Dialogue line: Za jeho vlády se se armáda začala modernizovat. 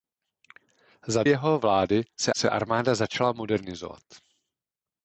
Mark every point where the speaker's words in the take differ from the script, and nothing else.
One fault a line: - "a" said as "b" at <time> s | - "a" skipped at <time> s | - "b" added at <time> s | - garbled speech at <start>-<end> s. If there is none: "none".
none